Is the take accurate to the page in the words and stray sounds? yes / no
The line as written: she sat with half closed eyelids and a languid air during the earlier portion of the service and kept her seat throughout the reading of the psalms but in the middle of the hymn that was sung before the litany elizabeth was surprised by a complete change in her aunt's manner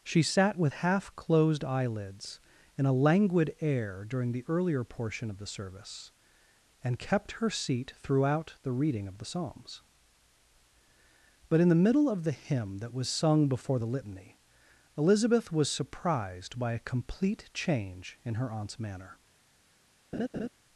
no